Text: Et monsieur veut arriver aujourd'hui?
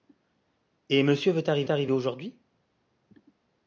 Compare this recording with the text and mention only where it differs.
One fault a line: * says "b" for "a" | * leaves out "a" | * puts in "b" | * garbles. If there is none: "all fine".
* puts in "arriver"